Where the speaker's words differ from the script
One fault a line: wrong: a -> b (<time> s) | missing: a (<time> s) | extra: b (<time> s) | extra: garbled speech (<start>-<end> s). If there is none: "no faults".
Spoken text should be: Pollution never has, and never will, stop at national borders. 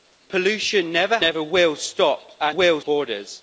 missing: has and (1.2 s)
wrong: national -> will (2.5 s)